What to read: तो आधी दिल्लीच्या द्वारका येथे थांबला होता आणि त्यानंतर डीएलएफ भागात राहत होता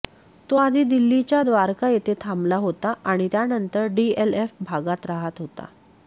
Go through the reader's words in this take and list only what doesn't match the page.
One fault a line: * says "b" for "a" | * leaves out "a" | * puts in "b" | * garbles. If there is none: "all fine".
all fine